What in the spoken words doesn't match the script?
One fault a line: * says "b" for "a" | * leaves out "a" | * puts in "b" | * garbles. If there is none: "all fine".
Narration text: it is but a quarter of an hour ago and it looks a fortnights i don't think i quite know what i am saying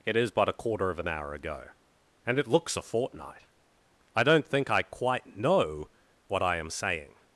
* says "fortnight" for "fortnights"